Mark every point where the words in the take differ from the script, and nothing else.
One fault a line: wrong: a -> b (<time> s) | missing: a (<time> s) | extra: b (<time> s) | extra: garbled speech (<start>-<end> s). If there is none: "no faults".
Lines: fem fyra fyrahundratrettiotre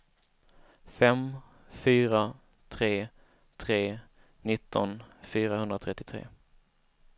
extra: tre tre nitton (2.7 s)